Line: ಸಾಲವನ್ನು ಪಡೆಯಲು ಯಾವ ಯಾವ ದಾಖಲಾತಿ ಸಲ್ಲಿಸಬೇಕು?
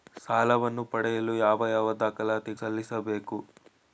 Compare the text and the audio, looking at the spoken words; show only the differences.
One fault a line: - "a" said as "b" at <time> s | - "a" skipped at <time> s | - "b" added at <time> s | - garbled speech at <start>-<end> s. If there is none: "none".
none